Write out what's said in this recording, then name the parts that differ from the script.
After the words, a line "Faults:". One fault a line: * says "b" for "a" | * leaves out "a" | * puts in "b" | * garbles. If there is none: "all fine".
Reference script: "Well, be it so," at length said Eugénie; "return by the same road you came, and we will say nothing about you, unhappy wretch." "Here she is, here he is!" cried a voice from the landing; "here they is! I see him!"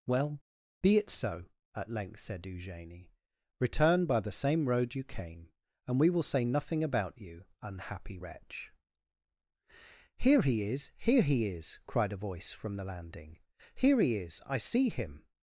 "Well, be it so," at length said Eugénie; "return by the same road you came, and we will say nothing about you, unhappy wretch." "Here he is, here he is!" cried a voice from the landing; "here he is! I see him!"
Faults:
* says "he" for "she"
* says "he" for "they"